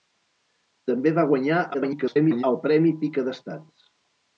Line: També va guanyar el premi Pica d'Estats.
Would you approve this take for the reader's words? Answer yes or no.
no